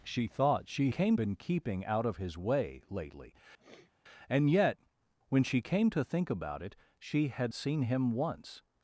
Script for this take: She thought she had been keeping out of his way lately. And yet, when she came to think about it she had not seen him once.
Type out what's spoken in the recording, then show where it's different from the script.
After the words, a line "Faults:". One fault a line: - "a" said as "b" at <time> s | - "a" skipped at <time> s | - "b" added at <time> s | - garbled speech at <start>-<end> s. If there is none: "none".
She thought she came been keeping out of his way lately. And yet, when she came to think about it she had seen him once.
Faults:
- "had" said as "came" at 0.9 s
- "not" skipped at 7.5 s